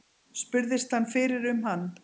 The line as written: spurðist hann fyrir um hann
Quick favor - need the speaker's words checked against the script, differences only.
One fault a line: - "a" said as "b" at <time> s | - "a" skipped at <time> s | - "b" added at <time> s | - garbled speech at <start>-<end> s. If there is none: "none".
none